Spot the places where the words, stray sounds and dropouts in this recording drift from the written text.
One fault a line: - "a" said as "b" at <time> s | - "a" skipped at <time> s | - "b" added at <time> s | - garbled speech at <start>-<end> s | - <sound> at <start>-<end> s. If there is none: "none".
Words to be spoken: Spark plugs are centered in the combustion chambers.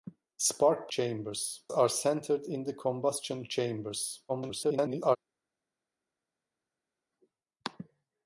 - "plugs" said as "chambers" at 0.9 s
- garbled speech at 4.3-5.2 s